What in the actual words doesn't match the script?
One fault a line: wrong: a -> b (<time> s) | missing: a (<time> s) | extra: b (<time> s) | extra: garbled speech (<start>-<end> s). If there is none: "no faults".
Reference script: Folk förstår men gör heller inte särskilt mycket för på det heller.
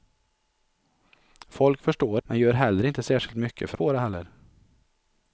no faults